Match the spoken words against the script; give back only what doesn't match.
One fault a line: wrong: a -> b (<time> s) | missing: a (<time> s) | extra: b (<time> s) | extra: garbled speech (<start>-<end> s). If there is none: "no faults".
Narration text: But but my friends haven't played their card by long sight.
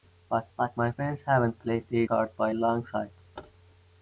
no faults